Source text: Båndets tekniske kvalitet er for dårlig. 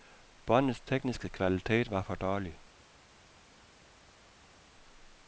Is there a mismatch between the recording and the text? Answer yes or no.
yes